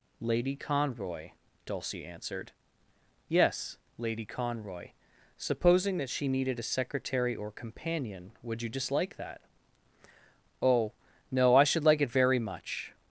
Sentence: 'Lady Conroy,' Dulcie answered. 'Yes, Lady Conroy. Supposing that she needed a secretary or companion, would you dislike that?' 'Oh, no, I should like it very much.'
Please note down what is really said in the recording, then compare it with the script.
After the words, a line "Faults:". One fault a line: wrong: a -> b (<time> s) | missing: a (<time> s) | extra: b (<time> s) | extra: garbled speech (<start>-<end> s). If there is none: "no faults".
'Lady Conroy,' Dulcie answered. 'Yes, Lady Conroy. Supposing that she needed a secretary or companion, would you dislike that?' 'Oh, no, I should like it very much.'
Faults:
no faults